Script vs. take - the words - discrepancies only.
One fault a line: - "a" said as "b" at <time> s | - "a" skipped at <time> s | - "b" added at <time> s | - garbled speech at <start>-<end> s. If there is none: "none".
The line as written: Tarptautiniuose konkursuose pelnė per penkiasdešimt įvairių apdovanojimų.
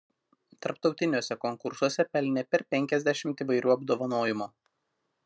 none